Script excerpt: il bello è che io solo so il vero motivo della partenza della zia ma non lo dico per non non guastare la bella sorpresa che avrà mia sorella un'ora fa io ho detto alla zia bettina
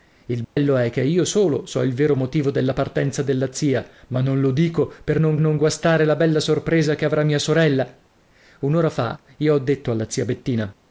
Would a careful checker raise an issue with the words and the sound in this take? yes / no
yes